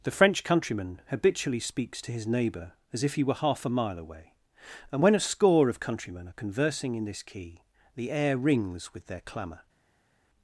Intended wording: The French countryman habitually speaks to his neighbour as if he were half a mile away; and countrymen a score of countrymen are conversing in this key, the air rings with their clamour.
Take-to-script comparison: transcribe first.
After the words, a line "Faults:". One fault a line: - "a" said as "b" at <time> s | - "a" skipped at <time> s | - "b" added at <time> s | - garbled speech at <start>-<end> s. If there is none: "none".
The French countryman habitually speaks to his neighbour as if he were half a mile away; and when a score of countrymen are conversing in this key, the air rings with their clamour.
Faults:
- "countrymen" said as "when" at 5.0 s